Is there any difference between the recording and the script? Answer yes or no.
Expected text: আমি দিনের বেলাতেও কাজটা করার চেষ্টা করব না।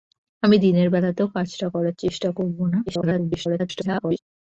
yes